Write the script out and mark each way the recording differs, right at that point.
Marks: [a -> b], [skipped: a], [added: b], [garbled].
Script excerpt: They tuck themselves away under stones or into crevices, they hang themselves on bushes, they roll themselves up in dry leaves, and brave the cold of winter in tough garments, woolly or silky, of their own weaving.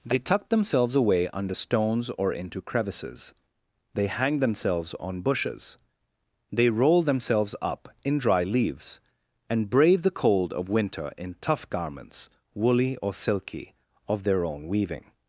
They tuck themselves away under stones or into crevices, they hang themselves on bushes, they roll themselves up in dry leaves, and brave the cold of winter in tough garments, woolly or silky, of their own weaving.